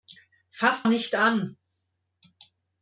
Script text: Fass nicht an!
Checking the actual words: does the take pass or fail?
pass